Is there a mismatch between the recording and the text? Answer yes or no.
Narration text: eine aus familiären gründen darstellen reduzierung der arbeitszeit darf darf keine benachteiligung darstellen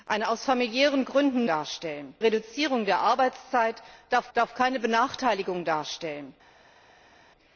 no